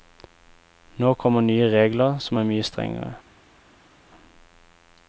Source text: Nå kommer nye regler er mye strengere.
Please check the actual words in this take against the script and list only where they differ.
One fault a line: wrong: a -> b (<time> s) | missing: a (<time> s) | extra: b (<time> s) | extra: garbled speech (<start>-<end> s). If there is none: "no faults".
extra: som (2.3 s)